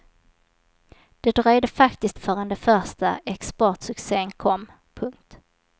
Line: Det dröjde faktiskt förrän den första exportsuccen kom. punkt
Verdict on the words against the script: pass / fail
pass